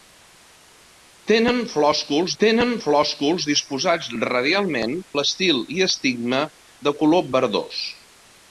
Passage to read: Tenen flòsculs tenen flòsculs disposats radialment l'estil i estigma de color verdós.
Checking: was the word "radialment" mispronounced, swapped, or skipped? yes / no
no